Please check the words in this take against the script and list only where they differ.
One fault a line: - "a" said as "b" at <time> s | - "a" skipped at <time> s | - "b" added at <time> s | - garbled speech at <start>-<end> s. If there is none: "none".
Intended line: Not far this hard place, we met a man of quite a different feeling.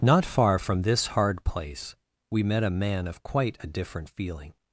- "from" added at 0.6 s